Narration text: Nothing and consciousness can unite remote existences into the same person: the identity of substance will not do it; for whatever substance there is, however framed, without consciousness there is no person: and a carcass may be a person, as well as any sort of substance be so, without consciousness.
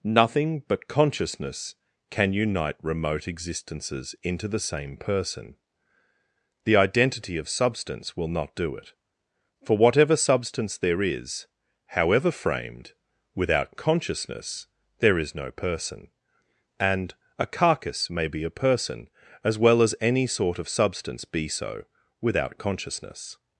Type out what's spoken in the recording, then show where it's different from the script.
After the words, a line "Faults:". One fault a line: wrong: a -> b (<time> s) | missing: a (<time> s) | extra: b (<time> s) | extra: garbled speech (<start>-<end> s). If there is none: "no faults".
Nothing but consciousness can unite remote existences into the same person: the identity of substance will not do it; for whatever substance there is, however framed, without consciousness there is no person: and a carcass may be a person, as well as any sort of substance be so, without consciousness.
Faults:
wrong: and -> but (0.7 s)